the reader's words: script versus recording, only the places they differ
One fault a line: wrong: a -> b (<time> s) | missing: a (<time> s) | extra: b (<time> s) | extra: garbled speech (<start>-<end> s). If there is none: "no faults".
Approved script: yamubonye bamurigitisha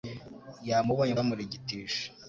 no faults